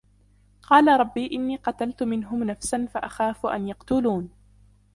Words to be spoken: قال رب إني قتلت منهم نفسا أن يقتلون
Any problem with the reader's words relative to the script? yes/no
yes